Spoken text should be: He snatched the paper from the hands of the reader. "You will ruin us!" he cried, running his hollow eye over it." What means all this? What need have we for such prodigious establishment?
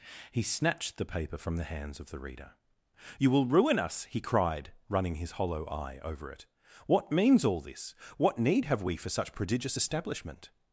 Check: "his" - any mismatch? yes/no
no